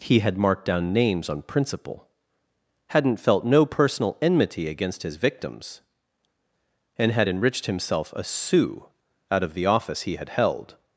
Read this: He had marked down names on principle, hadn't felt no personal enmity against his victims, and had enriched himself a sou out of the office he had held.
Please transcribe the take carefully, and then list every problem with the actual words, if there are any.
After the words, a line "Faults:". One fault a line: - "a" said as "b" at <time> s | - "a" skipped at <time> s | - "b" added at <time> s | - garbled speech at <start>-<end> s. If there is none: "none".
He had marked down names on principle, hadn't felt no personal enmity against his victims, and had enriched himself a sou out of the office he had held.
Faults:
none